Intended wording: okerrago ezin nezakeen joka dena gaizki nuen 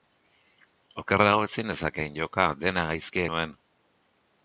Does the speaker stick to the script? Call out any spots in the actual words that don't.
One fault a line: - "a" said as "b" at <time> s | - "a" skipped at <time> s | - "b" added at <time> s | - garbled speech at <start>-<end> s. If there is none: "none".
none